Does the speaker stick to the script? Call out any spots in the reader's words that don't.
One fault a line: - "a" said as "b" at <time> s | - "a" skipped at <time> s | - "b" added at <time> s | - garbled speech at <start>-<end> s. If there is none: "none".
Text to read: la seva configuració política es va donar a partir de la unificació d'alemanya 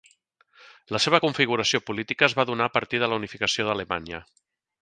none